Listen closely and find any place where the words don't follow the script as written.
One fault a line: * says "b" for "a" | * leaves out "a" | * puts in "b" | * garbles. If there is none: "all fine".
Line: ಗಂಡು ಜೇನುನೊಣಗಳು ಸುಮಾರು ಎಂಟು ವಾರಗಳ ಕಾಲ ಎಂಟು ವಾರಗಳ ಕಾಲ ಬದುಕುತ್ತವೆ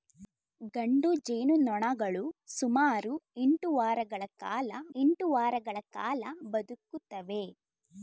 all fine